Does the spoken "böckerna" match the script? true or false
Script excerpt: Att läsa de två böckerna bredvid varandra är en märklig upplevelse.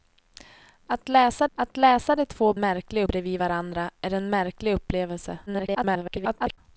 false